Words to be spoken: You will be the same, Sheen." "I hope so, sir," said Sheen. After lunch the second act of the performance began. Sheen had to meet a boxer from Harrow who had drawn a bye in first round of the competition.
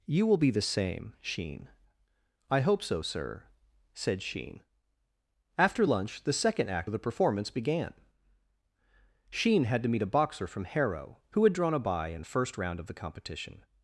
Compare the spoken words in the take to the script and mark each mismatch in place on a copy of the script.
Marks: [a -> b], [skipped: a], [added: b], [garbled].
You will be the same, Sheen." "I hope so, sir," said Sheen. After lunch the second act of the performance began. Sheen had to meet a boxer from Harrow who had drawn a bye in first round of the competition.